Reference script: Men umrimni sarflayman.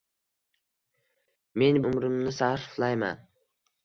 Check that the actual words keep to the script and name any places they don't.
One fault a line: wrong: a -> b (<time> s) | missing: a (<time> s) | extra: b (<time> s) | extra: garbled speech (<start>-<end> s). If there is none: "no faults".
no faults